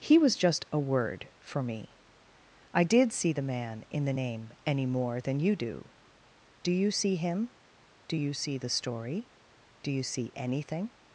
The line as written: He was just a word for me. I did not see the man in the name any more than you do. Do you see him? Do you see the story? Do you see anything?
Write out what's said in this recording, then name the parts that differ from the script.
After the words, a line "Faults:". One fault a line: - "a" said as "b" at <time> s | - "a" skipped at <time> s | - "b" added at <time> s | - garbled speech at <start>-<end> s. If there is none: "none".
He was just a word for me. I did see the man in the name any more than you do. Do you see him? Do you see the story? Do you see anything?
Faults:
- "not" skipped at 3.1 s